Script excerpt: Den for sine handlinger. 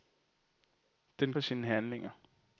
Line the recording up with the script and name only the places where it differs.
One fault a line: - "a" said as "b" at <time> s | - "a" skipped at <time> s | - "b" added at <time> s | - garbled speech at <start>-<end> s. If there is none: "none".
none